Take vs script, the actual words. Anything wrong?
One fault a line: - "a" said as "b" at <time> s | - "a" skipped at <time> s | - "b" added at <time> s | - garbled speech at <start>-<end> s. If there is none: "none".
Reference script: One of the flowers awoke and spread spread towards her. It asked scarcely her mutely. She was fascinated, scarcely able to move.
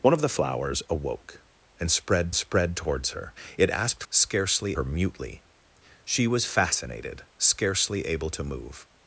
none